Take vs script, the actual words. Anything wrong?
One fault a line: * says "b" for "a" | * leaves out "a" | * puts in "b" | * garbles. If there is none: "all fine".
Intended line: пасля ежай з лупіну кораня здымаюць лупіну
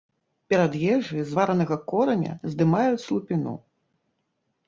* says "перад" for "пасля"
* says "варанага" for "лупіну"